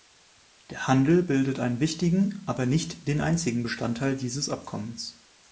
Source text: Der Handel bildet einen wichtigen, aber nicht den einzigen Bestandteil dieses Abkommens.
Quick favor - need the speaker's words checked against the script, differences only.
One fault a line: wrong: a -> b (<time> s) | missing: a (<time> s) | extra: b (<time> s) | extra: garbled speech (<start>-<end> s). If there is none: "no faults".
no faults